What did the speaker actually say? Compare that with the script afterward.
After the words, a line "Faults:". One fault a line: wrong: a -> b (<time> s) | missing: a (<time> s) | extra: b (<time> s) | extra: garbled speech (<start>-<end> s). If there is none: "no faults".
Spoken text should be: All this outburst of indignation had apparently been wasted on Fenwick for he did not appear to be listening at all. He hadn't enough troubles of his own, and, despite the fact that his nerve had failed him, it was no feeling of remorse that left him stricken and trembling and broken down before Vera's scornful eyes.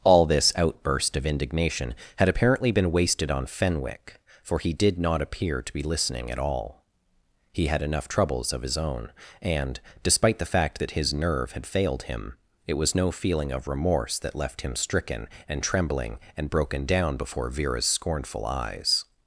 All this outburst of indignation had apparently been wasted on Fenwick for he did not appear to be listening at all. He had enough troubles of his own, and, despite the fact that his nerve had failed him, it was no feeling of remorse that left him stricken and trembling and broken down before Vera's scornful eyes.
Faults:
wrong: hadn't -> had (7.7 s)